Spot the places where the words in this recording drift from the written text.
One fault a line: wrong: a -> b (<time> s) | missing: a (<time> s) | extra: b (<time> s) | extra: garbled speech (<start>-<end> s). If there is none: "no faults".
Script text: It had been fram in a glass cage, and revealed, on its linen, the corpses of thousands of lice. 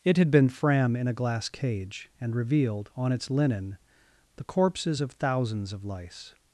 no faults